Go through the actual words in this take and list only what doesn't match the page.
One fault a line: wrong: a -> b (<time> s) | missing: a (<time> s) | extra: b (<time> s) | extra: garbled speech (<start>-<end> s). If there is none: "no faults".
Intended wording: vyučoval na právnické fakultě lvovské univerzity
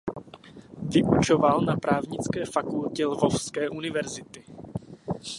no faults